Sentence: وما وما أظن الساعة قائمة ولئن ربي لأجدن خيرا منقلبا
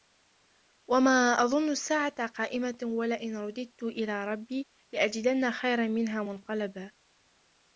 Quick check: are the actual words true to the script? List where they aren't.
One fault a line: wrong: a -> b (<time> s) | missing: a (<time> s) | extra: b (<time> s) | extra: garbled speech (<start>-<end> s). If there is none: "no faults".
missing: وما (1.4 s)
extra: رددت إلى (3.4 s)
extra: منها (5.9 s)